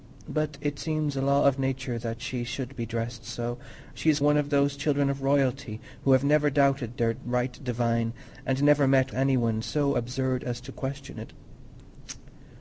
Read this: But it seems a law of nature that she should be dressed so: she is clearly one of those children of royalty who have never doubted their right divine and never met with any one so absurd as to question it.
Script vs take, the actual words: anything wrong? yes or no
yes